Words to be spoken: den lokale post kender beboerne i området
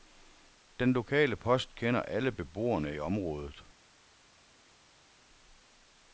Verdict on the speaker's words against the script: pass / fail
fail